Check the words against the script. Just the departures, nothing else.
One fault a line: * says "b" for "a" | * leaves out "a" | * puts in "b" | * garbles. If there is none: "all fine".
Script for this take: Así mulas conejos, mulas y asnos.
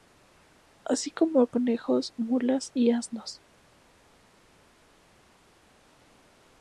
* says "como" for "mulas"